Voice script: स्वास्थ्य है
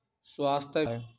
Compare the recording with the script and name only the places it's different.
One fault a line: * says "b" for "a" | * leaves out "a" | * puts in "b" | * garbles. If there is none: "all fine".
all fine